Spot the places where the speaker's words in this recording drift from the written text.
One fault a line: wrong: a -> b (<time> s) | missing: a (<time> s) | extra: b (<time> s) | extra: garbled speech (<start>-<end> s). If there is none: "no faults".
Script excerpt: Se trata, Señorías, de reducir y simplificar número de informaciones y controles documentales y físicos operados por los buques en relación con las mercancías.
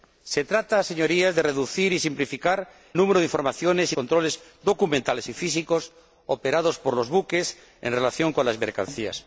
no faults